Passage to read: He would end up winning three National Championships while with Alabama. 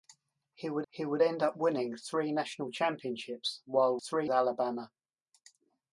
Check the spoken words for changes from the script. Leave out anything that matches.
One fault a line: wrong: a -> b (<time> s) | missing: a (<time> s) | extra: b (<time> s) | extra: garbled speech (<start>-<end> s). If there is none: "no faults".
extra: he would (0.9 s)
wrong: with -> three (4.0 s)